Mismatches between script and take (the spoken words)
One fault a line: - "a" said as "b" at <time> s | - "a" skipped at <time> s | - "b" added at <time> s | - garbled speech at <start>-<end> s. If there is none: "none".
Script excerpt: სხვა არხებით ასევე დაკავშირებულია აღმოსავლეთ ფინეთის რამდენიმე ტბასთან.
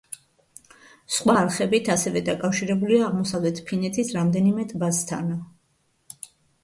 none